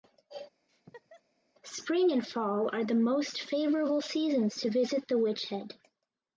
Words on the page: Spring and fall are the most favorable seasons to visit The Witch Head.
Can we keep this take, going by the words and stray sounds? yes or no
no